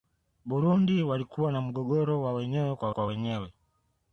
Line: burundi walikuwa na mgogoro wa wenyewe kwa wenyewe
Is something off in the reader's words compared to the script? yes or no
yes